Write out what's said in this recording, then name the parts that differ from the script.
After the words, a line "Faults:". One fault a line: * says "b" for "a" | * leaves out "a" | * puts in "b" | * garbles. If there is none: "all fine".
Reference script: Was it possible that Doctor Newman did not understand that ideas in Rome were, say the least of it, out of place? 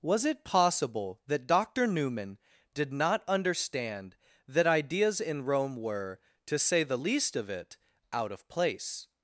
Was it possible that Doctor Newman did not understand that ideas in Rome were, to say the least of it, out of place?
Faults:
* puts in "to"